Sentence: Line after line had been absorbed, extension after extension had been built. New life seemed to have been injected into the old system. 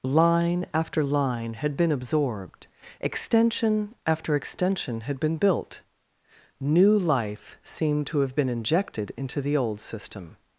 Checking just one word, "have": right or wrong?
right